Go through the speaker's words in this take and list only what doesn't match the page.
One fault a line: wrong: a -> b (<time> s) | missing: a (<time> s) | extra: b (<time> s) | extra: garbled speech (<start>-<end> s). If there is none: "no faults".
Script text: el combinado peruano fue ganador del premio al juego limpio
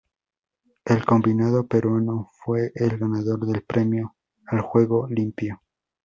extra: el (2.7 s)